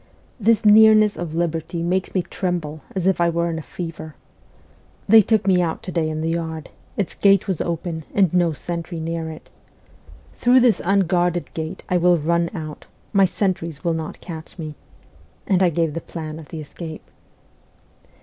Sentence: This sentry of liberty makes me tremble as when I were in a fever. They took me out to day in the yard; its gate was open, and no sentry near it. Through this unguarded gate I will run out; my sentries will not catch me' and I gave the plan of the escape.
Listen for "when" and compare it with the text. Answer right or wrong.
wrong